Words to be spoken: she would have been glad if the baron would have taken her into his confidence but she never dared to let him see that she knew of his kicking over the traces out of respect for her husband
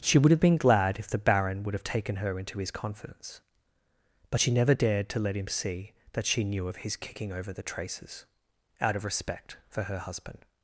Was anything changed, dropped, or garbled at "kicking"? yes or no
no